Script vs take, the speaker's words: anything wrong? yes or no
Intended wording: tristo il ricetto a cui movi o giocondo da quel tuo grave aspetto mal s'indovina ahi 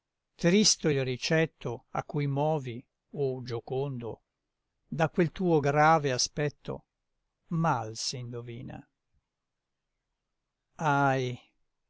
no